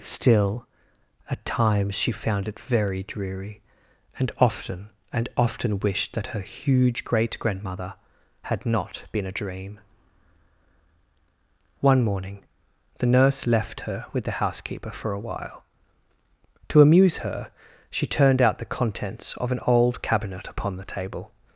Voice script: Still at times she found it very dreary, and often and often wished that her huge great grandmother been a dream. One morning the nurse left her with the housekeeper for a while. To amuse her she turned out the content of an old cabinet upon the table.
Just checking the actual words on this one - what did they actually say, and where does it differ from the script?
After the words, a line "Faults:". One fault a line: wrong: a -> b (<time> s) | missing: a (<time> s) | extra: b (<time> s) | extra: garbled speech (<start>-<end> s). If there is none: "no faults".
Still at times she found it very dreary, and often and often wished that her huge great grandmother had not been a dream. One morning the nurse left her with the housekeeper for a while. To amuse her she turned out the contents of an old cabinet upon the table.
Faults:
extra: had not (8.4 s)
wrong: content -> contents (18.7 s)